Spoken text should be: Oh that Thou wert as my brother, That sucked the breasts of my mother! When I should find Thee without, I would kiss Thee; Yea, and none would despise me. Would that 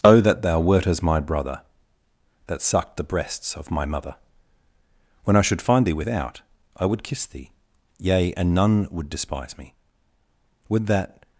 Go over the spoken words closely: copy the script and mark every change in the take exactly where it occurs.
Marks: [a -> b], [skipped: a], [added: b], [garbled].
Oh that Thou wert as my brother, That sucked the breasts of my mother! When I should find Thee without, I would kiss Thee; Yea, and none would despise me. Would that